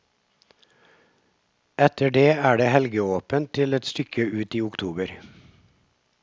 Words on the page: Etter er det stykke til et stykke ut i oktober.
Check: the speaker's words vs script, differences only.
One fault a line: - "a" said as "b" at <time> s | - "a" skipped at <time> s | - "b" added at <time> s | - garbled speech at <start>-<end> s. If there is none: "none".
- "det" added at 2.1 s
- "stykke" said as "helgeåpent" at 2.7 s